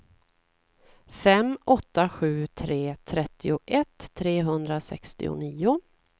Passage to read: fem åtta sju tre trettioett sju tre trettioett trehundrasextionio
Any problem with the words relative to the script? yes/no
yes